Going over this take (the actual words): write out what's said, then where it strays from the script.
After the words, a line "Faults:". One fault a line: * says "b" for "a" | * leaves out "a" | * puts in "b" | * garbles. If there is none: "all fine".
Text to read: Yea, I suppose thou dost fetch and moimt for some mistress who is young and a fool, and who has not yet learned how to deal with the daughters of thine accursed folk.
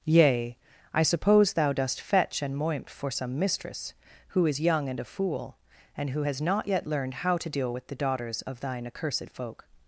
Yea, I suppose thou dost fetch and moimt for some mistress who is young and a fool, and who has not yet learned how to deal with the daughters of thine accursed folk.
Faults:
all fine